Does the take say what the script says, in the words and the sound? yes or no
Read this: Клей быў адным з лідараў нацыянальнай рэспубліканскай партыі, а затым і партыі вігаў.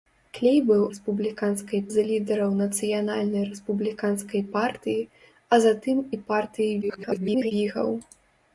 no